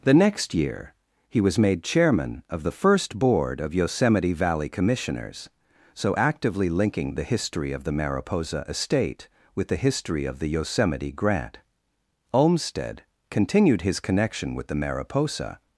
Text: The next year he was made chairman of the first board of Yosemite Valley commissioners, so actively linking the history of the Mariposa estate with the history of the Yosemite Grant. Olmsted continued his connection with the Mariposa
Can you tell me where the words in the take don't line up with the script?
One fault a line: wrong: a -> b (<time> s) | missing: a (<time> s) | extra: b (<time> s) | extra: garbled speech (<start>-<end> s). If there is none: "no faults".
no faults